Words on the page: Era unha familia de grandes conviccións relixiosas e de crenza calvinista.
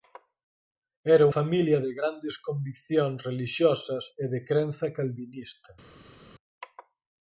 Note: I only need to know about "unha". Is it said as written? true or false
false